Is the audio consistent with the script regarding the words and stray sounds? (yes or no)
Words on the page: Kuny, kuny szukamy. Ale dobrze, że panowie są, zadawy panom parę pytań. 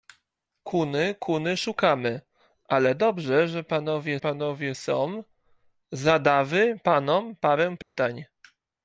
no